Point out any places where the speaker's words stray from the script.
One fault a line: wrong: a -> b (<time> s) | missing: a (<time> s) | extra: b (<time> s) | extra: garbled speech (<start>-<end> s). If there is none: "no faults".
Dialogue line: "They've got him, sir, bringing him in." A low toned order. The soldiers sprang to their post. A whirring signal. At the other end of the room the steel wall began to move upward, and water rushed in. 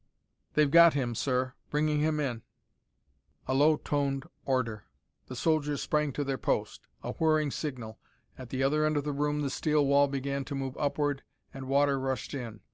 no faults